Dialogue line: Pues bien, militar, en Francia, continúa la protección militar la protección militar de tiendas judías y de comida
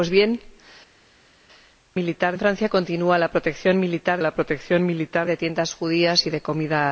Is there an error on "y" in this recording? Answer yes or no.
no